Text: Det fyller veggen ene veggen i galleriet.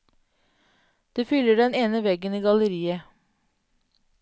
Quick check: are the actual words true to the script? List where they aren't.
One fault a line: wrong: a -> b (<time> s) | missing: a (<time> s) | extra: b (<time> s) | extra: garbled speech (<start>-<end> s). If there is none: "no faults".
wrong: veggen -> den (1.6 s)